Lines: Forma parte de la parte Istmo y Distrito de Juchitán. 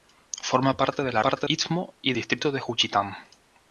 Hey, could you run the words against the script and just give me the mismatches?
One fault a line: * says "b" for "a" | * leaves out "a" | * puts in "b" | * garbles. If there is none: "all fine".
all fine